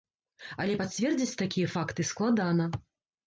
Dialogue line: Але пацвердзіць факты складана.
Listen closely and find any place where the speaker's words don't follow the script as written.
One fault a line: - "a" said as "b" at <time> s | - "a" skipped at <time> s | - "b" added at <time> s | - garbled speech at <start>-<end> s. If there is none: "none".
- "такія" added at 1.4 s